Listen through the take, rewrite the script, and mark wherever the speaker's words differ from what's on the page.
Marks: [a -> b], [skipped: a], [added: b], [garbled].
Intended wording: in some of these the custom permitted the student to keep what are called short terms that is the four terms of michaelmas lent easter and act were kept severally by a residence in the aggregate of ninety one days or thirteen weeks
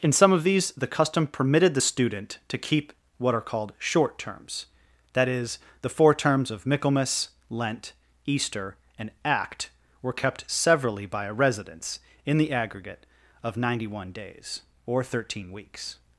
in some of these the custom permitted the student to keep what are called short terms that is the four terms of michaelmas lent easter and act were kept severally by a residence in the aggregate of ninety one days or thirteen weeks